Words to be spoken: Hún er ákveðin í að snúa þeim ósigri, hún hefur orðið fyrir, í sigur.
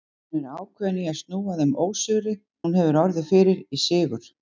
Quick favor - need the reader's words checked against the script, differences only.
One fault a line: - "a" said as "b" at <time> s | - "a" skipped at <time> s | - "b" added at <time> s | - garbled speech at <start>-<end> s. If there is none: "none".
none